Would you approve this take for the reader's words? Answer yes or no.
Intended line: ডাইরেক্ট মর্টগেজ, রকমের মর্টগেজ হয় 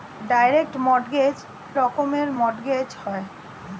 yes